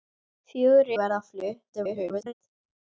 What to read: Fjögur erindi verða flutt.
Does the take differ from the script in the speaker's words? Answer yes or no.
yes